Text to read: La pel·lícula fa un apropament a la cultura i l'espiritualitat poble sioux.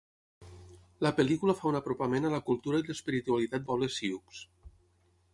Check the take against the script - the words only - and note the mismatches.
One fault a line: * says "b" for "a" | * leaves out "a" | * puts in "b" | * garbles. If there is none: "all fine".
all fine